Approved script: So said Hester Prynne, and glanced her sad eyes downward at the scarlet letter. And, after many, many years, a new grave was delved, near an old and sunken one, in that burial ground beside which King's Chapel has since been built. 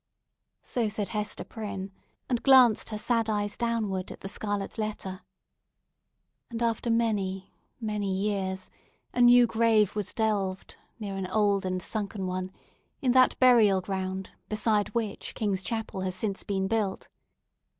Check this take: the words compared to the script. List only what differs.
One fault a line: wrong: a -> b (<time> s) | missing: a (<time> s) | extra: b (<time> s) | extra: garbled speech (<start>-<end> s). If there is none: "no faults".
no faults